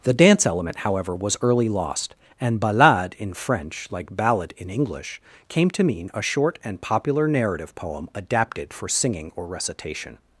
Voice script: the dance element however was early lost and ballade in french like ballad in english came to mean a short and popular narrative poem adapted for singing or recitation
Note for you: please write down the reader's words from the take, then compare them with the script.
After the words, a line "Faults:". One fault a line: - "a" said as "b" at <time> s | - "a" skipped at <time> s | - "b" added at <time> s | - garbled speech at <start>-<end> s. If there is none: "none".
the dance element however was early lost and ballade in french like ballad in english came to mean a short and popular narrative poem adapted for singing or recitation
Faults:
none